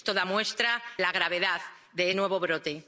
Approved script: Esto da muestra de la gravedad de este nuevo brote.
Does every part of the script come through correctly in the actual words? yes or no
no